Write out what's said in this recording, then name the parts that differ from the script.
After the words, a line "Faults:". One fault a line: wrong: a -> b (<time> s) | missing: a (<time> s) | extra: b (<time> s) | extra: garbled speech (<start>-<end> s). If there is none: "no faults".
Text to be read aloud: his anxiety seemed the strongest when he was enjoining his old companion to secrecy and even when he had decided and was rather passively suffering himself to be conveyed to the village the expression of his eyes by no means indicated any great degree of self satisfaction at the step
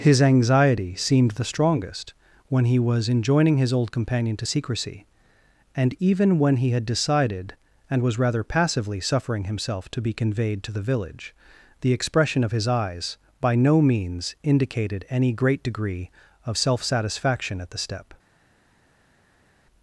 his anxiety seemed the strongest when he was enjoining his old companion to secrecy and even when he had decided and was rather passively suffering himself to be conveyed to the village the expression of his eyes by no means indicated any great degree of self satisfaction at the step
Faults:
no faults